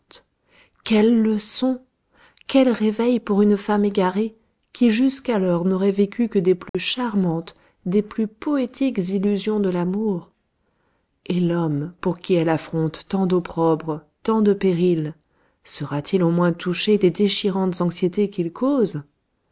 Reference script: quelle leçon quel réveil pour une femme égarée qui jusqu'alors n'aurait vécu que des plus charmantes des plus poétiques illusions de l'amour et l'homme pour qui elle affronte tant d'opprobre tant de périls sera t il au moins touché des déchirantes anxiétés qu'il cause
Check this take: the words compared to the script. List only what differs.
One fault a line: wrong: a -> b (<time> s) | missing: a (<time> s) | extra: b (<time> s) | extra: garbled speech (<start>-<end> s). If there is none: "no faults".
no faults